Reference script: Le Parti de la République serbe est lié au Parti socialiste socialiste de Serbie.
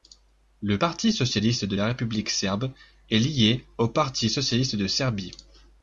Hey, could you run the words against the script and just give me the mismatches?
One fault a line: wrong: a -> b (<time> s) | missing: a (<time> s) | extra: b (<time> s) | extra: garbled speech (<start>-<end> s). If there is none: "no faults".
extra: socialiste (1.1 s)
missing: socialiste (4.7 s)